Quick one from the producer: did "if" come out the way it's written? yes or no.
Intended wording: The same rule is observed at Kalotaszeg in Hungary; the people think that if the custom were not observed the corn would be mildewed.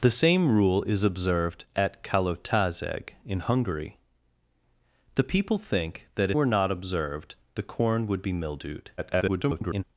no